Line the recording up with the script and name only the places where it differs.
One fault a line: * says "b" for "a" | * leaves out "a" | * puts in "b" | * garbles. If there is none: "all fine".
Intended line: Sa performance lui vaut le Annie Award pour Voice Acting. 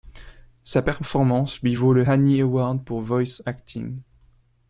all fine